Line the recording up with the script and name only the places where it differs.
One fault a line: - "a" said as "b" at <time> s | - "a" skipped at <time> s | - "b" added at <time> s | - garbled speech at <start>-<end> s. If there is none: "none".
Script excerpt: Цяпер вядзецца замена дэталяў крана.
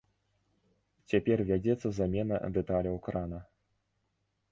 none